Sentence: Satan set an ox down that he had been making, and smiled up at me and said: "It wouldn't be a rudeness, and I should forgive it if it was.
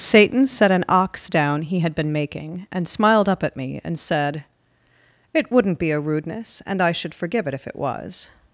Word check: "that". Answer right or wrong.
wrong